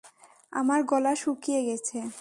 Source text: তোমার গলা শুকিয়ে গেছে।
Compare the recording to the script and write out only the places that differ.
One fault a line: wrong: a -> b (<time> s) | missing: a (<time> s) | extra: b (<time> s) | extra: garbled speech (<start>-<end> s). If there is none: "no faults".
wrong: তোমার -> আমার (0.5 s)